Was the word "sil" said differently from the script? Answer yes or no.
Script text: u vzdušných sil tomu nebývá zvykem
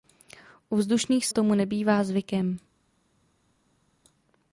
yes